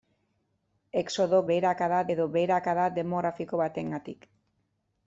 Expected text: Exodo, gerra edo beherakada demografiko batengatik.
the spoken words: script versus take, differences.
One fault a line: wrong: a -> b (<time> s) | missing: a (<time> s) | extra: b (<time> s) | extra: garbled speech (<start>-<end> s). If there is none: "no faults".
wrong: gerra -> beherakada (1.5 s)